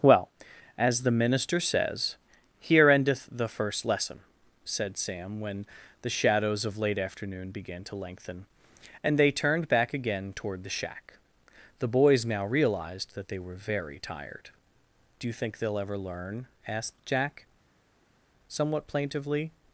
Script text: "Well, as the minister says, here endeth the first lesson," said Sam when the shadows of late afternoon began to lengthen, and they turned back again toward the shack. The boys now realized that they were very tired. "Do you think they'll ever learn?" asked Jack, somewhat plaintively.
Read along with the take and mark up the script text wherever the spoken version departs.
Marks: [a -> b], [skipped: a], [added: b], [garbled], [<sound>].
"Well, as the minister says, here endeth the first lesson," said Sam when the shadows of late afternoon began to lengthen, and they turned back again toward the shack. The boys now realized that they were very tired. "Do you think they'll ever learn?" asked Jack, somewhat plaintively.